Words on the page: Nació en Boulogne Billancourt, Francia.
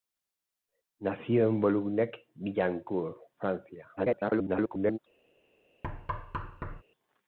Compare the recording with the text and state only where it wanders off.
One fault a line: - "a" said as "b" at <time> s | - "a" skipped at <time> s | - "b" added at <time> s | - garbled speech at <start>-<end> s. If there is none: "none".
- garbled speech at 4.0-5.0 s